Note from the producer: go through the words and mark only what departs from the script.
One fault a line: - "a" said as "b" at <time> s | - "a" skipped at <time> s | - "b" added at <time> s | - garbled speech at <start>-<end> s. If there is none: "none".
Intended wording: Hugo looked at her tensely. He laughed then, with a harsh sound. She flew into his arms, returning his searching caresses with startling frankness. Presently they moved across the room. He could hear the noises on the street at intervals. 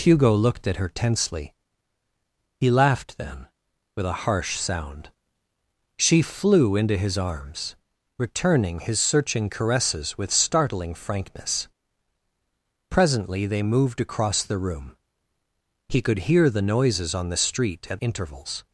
none